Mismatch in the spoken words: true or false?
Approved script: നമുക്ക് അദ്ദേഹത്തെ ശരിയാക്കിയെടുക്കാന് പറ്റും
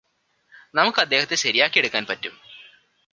false